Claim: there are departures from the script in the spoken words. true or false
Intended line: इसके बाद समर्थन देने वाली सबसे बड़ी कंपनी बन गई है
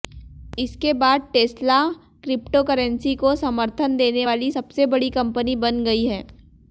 true